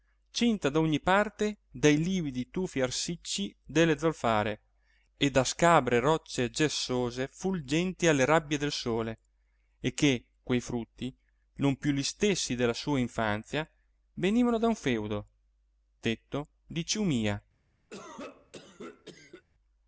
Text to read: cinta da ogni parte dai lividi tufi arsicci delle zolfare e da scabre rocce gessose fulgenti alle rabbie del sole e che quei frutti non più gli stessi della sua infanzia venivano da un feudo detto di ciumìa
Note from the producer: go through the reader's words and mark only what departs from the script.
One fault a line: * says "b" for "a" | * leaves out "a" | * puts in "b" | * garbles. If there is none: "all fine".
all fine